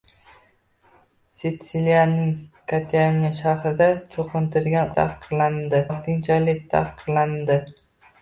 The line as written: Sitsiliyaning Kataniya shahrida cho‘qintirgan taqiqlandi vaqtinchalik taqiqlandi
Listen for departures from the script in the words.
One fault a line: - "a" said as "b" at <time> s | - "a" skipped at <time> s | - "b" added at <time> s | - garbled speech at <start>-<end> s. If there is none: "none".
none